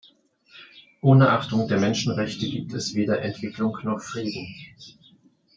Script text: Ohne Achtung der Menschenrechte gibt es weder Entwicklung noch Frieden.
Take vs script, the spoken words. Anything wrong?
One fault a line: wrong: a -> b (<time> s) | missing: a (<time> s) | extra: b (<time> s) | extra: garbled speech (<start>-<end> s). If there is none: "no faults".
no faults